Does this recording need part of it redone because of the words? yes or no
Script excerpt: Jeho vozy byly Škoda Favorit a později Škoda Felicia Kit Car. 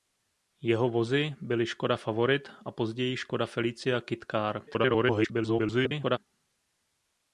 yes